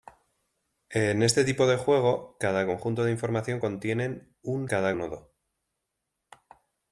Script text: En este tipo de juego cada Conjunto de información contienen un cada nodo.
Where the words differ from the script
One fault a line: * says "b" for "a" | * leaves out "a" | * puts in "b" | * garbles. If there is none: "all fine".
all fine